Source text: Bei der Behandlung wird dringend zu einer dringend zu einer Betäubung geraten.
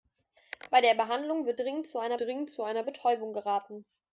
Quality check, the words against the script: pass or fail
pass